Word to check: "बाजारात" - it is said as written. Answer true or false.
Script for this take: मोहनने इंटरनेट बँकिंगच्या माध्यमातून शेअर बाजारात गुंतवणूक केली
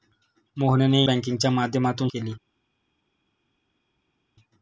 false